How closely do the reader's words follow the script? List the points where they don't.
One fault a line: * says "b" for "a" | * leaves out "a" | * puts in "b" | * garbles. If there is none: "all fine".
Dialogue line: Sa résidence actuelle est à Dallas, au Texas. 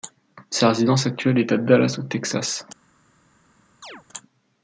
all fine